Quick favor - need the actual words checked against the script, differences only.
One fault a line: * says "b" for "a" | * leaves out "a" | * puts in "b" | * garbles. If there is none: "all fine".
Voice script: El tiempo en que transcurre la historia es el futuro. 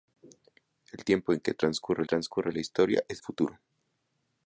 * puts in "transcurre"
* leaves out "el"